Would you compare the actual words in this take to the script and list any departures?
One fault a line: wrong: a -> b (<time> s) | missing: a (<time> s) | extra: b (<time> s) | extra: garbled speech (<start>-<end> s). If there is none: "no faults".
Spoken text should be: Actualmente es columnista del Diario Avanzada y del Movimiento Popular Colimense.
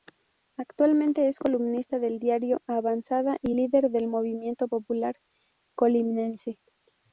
extra: líder (3.5 s)